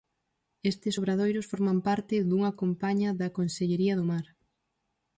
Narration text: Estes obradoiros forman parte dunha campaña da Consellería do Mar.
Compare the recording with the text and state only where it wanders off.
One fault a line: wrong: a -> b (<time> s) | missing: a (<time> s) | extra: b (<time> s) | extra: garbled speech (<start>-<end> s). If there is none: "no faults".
no faults